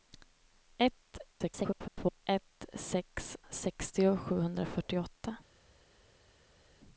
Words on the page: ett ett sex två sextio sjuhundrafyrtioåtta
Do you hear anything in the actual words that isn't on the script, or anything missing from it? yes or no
yes